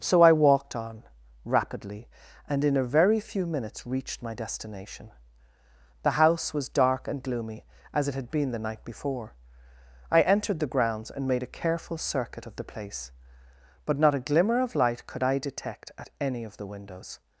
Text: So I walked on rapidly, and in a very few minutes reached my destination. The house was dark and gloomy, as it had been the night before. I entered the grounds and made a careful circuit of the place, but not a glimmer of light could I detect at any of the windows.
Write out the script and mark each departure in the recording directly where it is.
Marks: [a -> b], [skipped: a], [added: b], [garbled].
So I walked on rapidly, and in a very few minutes reached my destination. The house was dark and gloomy, as it had been the night before. I entered the grounds and made a careful circuit of the place, but not a glimmer of light could I detect at any of the windows.